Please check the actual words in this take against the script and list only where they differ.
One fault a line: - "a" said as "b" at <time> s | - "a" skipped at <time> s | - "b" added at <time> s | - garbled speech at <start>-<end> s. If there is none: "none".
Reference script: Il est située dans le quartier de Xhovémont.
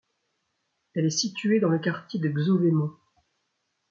- "Il" said as "Elle" at 0.9 s